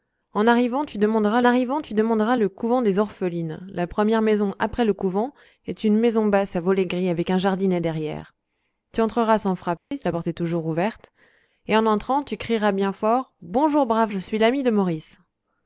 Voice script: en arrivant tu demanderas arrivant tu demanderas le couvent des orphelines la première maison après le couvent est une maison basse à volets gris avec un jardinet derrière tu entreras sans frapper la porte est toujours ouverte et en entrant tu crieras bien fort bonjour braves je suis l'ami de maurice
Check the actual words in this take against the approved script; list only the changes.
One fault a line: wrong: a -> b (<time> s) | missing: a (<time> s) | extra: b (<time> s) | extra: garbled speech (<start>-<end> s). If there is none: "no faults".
no faults